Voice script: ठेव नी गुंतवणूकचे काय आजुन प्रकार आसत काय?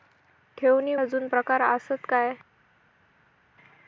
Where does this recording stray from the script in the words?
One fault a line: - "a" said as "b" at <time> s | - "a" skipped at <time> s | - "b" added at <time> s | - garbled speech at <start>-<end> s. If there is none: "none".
- "गुंतवणूकचे काय" skipped at 0.9 s